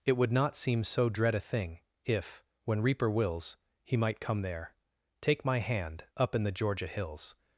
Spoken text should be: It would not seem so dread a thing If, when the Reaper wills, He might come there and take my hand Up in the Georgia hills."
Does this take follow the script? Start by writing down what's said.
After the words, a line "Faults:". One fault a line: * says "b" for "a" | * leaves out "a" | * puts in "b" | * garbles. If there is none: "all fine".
It would not seem so dread a thing If, when Reaper wills, He might come there take my hand Up in the Georgia hills."
Faults:
* leaves out "the"
* leaves out "and"